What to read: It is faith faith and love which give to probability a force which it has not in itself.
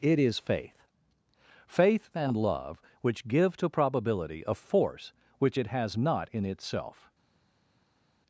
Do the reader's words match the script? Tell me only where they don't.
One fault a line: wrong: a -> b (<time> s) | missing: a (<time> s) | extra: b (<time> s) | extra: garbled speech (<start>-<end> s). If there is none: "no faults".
no faults